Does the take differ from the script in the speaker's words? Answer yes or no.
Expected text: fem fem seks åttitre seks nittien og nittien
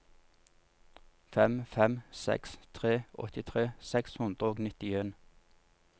yes